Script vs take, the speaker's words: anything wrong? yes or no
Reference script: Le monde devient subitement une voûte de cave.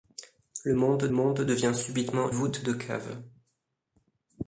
yes